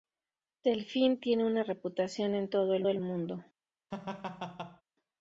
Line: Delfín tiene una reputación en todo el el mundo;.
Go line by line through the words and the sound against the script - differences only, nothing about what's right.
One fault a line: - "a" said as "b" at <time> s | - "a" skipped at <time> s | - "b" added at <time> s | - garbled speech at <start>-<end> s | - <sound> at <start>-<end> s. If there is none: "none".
- laugh at 3.9-4.8 s